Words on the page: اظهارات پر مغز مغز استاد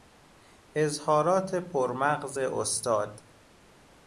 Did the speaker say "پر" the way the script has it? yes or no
yes